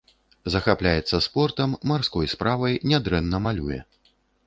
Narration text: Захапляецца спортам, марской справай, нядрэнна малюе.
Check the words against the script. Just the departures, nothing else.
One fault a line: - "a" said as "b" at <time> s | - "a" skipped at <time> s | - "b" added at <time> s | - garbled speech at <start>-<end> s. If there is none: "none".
none